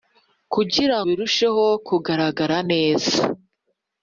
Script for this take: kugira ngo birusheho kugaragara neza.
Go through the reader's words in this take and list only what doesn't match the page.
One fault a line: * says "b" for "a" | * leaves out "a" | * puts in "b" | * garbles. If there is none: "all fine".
* leaves out "ngo"